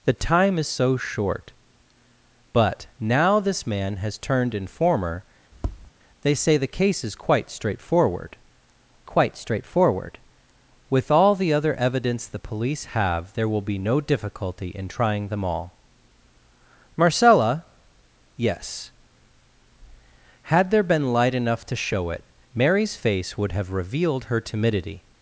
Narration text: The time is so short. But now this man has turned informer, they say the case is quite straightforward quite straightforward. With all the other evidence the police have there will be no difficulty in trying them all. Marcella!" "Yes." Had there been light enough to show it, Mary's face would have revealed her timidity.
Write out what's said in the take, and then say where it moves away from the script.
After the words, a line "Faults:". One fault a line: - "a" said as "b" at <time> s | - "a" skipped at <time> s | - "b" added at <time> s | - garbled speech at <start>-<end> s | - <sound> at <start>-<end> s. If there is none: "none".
The time is so short. But now this man has turned informer, they say the case is quite straightforward quite straightforward. With all the other evidence the police have there will be no difficulty in trying them all. Marcella!" "Yes." Had there been light enough to show it, Mary's face would have revealed her timidity.
Faults:
- tap at 5.5-5.9 s